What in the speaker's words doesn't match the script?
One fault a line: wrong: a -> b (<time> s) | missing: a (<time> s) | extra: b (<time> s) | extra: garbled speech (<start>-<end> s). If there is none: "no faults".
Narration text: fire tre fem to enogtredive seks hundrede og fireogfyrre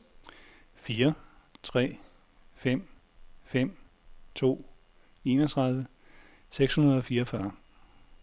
extra: fem (3.4 s)